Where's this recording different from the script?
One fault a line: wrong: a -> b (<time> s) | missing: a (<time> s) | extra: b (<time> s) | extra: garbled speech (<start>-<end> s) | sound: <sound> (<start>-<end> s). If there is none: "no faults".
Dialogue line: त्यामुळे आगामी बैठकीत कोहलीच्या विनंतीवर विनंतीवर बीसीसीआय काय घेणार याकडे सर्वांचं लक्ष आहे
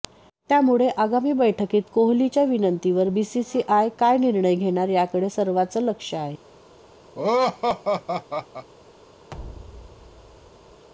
missing: विनंतीवर (3.1 s)
extra: निर्णय (4.2 s)
sound: laugh (7.1-8.7 s)
sound: thud (9.3-10.9 s)